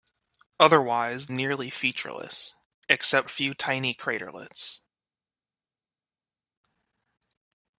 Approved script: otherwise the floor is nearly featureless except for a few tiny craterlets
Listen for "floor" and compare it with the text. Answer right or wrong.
wrong